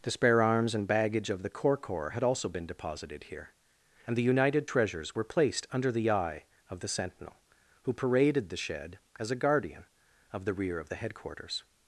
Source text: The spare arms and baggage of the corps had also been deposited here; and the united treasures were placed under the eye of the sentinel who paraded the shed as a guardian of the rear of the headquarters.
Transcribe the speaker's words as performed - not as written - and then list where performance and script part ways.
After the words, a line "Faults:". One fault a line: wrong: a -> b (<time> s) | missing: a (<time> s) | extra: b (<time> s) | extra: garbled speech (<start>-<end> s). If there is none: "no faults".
The spare arms and baggage of the corps corps had also been deposited here; and the united treasures were placed under the eye of the sentinel who paraded the shed as a guardian of the rear of the headquarters.
Faults:
extra: corps (1.8 s)